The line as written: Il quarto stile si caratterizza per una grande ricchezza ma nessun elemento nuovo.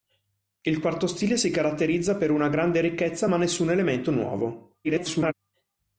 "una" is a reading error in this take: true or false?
false